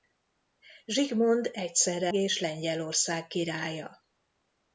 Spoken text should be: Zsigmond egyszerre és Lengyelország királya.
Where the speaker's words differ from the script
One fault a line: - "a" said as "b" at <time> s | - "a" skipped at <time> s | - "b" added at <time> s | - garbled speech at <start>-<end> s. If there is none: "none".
none